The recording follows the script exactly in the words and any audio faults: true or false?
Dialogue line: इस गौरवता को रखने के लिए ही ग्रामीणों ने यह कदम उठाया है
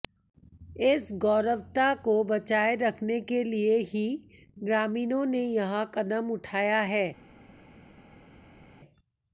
false